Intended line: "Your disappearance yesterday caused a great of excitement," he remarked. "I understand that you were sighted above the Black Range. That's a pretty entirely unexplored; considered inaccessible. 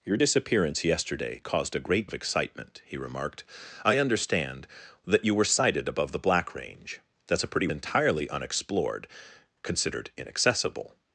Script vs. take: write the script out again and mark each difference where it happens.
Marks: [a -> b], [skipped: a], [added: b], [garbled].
"Your disappearance yesterday caused a great of excitement," he remarked. "I understand that you were sighted above the Black Range. That's a pretty entirely unexplored; considered inaccessible.